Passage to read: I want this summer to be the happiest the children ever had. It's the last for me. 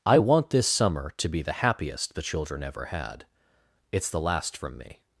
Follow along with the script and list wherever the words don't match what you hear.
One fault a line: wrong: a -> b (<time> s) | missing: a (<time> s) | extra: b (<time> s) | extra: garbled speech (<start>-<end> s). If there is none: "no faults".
wrong: for -> from (4.6 s)